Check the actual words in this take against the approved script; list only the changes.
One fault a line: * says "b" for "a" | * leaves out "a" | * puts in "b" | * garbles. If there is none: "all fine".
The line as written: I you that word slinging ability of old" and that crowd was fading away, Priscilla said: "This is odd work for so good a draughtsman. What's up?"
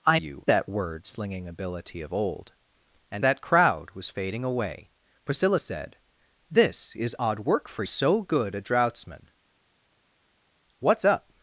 all fine